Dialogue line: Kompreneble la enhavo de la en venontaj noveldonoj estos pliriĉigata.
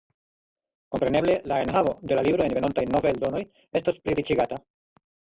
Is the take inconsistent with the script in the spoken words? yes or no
yes